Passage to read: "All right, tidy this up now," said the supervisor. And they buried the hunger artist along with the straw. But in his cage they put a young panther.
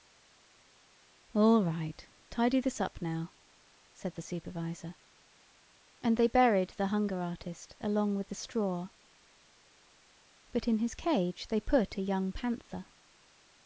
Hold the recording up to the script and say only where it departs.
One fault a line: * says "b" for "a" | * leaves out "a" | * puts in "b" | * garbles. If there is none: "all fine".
all fine